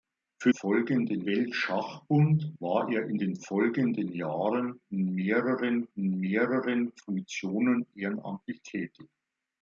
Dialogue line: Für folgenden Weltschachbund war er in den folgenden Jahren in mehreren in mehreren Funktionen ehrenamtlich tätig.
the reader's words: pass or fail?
pass